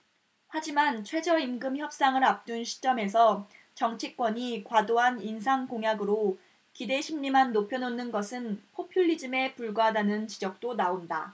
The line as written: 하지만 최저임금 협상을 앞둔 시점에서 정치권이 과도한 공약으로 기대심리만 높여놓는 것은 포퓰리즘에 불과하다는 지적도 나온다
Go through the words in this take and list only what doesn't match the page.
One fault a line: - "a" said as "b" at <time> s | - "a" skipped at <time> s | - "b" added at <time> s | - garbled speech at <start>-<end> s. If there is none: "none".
- "인상" added at 5.2 s